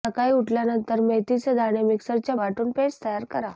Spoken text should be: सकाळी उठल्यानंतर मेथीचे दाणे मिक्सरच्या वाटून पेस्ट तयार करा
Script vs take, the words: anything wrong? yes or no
no